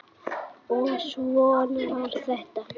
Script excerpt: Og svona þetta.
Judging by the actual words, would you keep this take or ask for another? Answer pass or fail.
fail